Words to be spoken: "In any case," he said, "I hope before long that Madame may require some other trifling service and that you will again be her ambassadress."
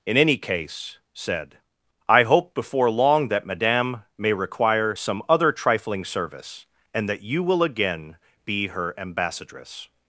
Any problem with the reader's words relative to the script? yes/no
yes